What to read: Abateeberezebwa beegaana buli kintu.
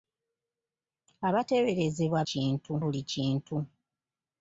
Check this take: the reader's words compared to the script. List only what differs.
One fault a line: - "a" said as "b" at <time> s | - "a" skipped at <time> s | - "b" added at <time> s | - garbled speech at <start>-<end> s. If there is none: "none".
- "beegaana" said as "kintu" at 2.3 s